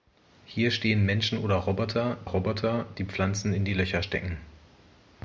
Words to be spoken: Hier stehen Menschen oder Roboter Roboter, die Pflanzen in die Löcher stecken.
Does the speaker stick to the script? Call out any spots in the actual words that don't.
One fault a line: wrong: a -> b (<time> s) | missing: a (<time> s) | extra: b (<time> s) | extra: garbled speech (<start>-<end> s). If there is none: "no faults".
no faults